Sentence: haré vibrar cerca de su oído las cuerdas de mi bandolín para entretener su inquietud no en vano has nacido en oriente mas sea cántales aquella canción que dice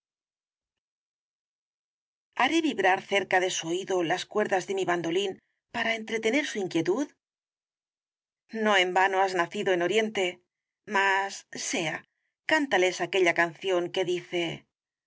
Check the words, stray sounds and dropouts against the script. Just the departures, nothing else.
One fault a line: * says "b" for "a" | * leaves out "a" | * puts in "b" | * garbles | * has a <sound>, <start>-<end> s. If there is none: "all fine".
all fine